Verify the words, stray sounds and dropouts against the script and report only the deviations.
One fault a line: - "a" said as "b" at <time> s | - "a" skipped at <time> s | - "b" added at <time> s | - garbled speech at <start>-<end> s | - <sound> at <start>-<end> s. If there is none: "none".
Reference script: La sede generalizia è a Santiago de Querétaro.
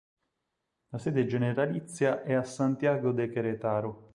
none